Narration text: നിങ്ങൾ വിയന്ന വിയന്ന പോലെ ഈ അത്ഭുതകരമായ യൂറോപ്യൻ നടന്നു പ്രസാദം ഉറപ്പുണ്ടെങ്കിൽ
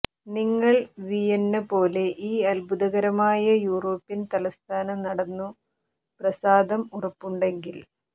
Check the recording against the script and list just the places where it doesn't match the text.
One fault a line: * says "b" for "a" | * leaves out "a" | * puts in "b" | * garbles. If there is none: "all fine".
* leaves out "വിയന്ന"
* puts in "തലസ്ഥാന"